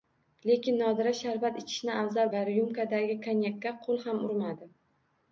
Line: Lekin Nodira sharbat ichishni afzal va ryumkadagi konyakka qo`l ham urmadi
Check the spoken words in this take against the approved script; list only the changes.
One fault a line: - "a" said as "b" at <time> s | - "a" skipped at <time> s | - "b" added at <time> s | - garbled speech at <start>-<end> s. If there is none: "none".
none